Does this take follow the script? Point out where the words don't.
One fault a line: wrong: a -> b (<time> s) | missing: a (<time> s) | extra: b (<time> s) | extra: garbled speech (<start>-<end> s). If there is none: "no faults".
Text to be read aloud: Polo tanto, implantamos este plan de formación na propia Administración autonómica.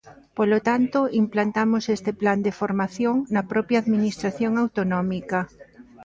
no faults